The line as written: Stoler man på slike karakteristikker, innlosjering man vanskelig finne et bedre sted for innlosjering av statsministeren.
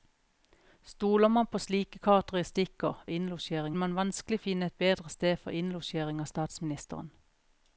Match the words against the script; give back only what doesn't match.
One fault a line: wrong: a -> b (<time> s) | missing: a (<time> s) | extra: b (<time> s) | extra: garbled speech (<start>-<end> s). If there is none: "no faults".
no faults